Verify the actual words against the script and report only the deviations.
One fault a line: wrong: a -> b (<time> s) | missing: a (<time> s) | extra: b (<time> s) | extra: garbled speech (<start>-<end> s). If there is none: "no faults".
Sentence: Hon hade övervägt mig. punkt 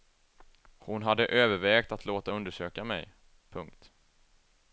extra: att låta undersöka (1.9 s)